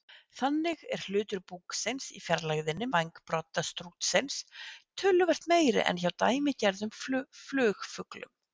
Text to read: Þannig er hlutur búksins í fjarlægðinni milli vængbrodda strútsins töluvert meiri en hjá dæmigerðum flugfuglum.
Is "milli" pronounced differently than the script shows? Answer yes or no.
yes